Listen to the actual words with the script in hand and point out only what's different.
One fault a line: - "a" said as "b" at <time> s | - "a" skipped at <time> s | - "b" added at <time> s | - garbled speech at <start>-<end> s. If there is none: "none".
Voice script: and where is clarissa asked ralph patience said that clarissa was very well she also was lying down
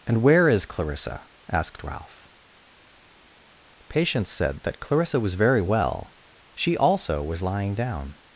none